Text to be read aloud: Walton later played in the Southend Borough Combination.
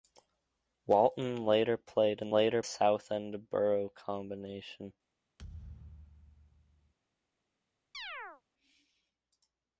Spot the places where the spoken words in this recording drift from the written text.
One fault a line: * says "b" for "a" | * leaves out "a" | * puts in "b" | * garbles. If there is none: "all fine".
* says "later" for "the"